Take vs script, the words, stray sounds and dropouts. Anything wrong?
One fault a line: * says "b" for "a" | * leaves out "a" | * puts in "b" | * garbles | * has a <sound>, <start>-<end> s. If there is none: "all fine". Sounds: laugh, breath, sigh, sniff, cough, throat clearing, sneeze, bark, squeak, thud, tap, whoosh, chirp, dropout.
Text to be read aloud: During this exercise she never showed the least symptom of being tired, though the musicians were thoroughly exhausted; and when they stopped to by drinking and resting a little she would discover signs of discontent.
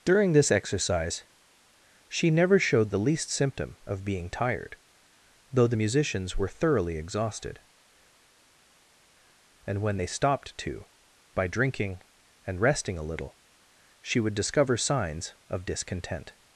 all fine